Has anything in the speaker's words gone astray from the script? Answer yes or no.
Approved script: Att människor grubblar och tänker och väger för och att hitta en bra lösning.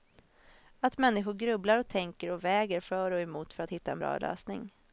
yes